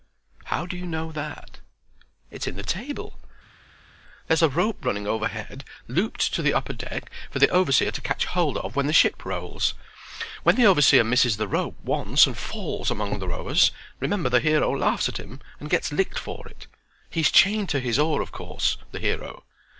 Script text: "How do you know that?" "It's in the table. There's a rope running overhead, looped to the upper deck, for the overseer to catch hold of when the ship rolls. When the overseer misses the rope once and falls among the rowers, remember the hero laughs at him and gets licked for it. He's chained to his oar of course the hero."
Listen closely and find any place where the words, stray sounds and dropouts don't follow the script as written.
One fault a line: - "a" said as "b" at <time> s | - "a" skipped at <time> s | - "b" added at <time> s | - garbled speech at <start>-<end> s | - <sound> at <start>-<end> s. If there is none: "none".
none